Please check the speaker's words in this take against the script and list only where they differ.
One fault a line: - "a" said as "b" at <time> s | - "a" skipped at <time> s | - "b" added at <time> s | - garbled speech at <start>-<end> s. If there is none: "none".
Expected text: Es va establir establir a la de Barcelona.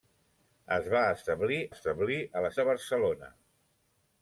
none